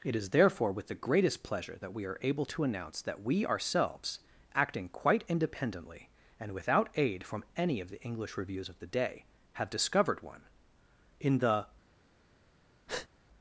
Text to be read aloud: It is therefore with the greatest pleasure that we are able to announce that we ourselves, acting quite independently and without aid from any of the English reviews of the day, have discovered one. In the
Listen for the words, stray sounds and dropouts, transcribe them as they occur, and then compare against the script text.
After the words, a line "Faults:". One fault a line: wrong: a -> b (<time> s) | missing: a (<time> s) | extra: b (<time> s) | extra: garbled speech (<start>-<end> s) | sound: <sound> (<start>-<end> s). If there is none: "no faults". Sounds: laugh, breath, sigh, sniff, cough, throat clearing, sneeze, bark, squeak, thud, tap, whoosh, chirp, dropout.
It is therefore with the greatest pleasure that we are able to announce that we ourselves, acting quite independently and without aid from any of the English reviews of the day, have discovered one. In the
Faults:
sound: breath (12.9-13.1 s)